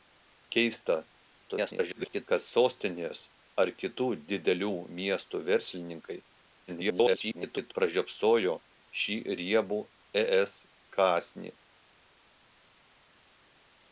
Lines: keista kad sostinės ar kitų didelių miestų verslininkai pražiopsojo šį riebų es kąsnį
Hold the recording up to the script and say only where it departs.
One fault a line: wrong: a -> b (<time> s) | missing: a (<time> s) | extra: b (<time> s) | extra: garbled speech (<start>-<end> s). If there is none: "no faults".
extra: garbled speech (1.4-2.3 s)
extra: garbled speech (6.7-7.7 s)